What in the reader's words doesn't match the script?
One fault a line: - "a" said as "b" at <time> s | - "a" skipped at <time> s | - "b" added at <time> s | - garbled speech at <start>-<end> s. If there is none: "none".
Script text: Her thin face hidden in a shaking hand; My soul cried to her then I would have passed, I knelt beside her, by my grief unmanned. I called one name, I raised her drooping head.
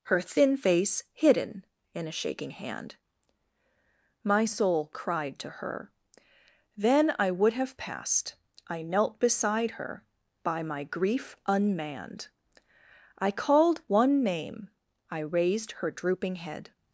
none